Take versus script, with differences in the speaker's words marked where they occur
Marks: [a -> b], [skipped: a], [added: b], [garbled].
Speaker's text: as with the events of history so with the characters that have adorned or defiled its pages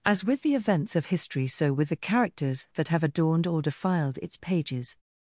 as with the events of history so with the characters that have adorned or defiled its pages